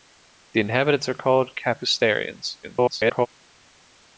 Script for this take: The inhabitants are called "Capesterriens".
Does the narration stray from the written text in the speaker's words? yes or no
yes